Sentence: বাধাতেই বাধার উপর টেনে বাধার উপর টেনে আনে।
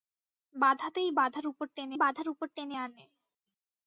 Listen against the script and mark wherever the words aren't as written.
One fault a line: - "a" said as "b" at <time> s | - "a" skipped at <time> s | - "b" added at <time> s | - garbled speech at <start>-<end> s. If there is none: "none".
none